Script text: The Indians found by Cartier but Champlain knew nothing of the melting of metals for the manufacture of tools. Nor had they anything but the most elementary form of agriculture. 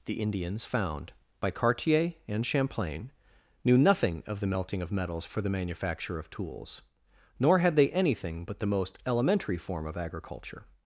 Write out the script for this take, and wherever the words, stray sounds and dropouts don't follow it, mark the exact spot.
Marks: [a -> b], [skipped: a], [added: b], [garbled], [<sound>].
The Indians found by Cartier [but -> and] Champlain knew nothing of the melting of metals for the manufacture of tools. Nor had they anything but the most elementary form of agriculture.